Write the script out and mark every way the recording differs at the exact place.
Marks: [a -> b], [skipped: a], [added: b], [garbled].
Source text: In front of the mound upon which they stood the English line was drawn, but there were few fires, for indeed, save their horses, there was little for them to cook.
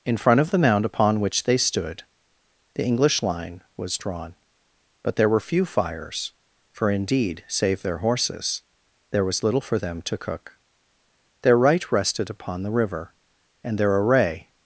In front of the mound upon which they stood the English line was drawn, but there were few fires, for indeed, save their horses, there was little for them to cook. [added: Their right rested upon the river and their array]